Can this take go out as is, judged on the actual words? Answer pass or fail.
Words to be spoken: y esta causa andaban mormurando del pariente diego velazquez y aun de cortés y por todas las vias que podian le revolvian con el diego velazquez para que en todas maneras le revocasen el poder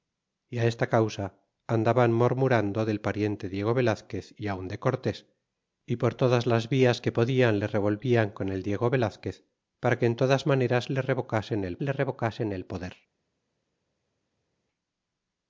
fail